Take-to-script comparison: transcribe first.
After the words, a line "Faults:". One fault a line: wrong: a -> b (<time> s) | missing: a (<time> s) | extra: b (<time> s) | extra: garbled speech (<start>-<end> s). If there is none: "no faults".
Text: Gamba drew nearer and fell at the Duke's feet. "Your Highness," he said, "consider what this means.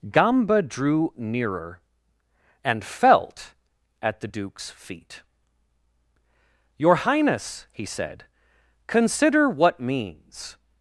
Gamba drew nearer and felt at the Duke's feet. "Your Highness," he said, "consider what means.
Faults:
wrong: fell -> felt (2.8 s)
missing: this (9.8 s)